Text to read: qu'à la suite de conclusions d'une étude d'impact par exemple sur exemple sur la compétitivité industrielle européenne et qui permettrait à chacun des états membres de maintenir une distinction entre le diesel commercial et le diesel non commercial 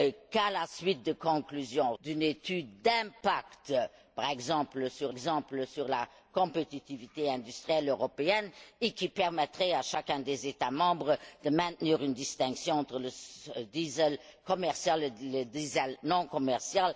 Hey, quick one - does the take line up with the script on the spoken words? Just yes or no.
yes